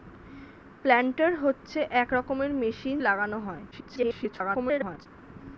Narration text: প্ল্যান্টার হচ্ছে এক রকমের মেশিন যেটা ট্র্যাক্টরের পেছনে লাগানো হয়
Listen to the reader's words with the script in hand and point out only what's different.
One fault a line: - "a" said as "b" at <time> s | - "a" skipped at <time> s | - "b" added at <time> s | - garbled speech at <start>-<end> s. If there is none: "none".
- "যেটা ট্র্যাক্টরের পেছনে" skipped at 3.0 s
- garbled speech at 3.7-5.1 s